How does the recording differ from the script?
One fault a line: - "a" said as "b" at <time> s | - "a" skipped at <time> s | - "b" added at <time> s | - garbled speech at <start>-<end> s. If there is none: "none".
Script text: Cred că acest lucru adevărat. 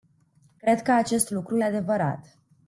none